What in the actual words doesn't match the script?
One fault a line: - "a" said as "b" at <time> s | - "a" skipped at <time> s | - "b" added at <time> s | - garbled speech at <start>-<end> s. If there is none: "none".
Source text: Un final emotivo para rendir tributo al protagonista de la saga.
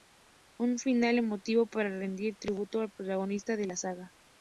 none